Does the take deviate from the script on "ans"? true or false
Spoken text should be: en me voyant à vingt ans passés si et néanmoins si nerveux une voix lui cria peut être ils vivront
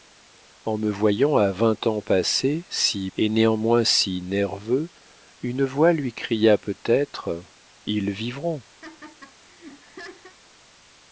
false